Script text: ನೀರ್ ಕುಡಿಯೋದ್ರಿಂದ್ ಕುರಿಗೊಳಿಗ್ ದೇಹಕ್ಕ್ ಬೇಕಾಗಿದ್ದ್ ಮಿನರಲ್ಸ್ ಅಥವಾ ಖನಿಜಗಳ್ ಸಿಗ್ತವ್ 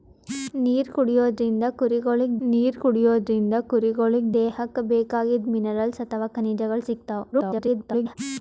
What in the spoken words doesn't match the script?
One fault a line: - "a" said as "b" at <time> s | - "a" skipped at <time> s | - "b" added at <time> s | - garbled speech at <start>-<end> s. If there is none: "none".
- "ನೀರ್ ಕುಡಿಯೋದ್ರಿಂದ್ ಕುರಿಗೊಳಿಗ್" added at 2.5 s
- garbled speech at 7.3-8.2 s